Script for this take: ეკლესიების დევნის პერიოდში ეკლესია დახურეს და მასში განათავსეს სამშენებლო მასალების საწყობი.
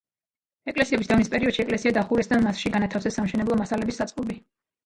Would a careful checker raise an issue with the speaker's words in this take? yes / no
no